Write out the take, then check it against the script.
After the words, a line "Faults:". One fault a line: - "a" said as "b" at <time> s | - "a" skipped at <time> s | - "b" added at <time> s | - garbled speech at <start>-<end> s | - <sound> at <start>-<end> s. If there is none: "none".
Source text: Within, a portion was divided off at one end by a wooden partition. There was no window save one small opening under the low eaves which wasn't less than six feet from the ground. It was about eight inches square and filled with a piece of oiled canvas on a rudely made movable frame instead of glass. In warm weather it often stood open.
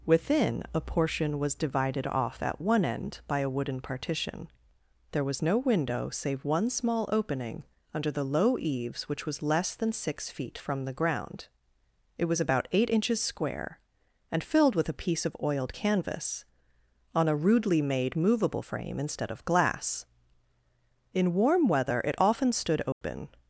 Within, a portion was divided off at one end by a wooden partition. There was no window save one small opening under the low eaves which was less than six feet from the ground. It was about eight inches square and filled with a piece of oiled canvas on a rudely made movable frame instead of glass. In warm weather it often stood open.
Faults:
- "wasn't" said as "was" at 9.2 s
- dropout at 22.9-23.0 s